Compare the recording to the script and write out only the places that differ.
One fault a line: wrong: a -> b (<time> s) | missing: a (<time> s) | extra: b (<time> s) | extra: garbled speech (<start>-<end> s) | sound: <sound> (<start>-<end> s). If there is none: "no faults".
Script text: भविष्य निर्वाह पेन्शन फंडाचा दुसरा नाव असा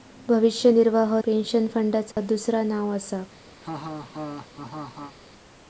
sound: dropout (2.1-2.2 s)
sound: laugh (3.6-5.2 s)